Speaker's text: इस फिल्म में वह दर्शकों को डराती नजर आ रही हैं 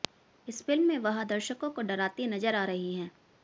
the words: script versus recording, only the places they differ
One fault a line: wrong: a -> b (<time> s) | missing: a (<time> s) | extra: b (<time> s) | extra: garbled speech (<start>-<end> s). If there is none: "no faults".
no faults